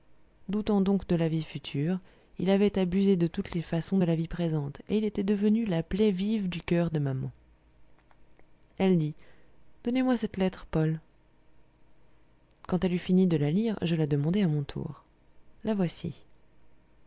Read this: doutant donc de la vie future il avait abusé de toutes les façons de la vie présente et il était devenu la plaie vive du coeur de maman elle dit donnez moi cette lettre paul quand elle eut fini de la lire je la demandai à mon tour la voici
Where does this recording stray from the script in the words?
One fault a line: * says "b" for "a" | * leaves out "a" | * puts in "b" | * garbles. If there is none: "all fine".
all fine